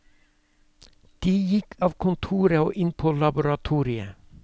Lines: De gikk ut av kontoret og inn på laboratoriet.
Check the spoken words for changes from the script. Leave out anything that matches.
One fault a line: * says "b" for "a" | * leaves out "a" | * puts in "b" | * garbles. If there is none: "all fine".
* leaves out "ut"